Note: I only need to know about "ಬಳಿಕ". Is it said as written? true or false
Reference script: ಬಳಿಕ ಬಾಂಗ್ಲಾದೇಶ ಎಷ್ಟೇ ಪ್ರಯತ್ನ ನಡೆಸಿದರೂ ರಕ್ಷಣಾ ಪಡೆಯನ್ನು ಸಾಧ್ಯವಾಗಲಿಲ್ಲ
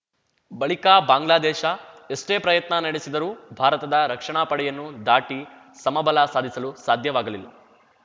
true